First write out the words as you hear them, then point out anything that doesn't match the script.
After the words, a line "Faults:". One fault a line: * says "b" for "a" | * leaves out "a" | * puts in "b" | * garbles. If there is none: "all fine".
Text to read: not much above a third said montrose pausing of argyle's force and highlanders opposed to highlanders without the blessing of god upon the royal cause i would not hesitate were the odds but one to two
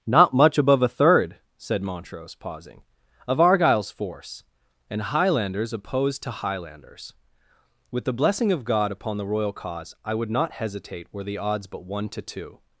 not much above a third said montrose pausing of argyle's force and highlanders opposed to highlanders with the blessing of god upon the royal cause i would not hesitate were the odds but one to two
Faults:
* says "with" for "without"